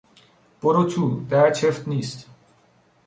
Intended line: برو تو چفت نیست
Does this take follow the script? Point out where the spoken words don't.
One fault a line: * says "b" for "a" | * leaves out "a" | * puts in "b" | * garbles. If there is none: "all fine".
* puts in "در"